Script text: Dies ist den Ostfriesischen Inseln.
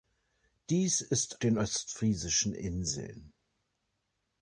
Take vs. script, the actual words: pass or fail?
pass